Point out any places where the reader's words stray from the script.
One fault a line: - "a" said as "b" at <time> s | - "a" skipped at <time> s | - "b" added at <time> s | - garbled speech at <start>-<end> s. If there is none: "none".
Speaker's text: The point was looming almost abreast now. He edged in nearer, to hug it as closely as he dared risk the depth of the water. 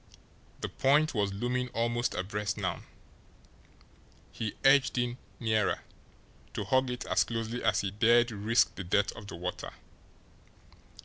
none